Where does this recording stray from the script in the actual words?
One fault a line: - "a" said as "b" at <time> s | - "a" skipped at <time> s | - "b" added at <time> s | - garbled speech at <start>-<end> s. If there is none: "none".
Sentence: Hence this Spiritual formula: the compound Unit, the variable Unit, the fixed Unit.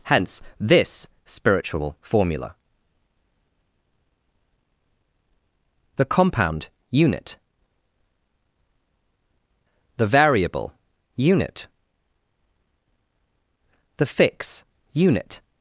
- "fixed" said as "fix" at 14.1 s